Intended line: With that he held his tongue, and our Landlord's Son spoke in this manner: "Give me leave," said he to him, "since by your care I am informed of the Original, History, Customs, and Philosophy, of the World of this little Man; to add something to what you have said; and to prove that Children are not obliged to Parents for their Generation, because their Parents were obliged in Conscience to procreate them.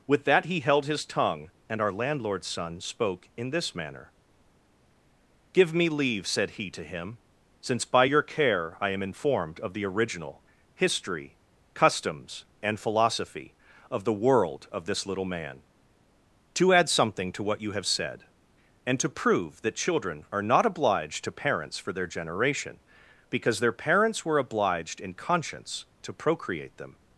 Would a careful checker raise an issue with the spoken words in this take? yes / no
no